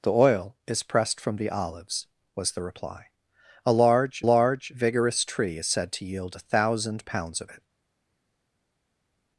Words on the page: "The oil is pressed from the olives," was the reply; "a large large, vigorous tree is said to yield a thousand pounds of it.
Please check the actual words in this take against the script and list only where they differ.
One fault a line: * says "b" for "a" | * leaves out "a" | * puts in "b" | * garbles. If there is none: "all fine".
all fine